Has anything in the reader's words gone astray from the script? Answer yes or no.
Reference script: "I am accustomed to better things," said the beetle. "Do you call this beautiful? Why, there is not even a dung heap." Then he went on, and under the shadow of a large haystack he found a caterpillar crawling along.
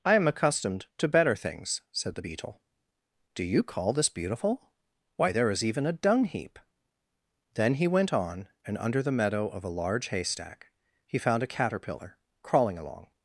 yes